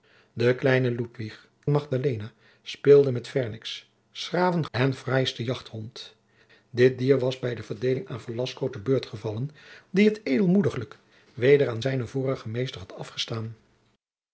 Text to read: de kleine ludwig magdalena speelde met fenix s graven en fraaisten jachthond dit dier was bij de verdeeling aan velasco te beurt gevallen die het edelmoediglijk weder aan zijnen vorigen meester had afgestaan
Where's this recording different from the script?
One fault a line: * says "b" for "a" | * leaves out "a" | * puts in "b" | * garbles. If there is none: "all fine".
all fine